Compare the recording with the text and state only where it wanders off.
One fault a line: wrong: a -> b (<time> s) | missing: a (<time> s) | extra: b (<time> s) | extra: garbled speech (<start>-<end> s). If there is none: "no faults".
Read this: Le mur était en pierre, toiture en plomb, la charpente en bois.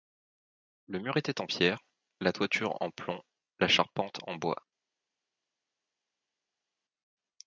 extra: la (2.2 s)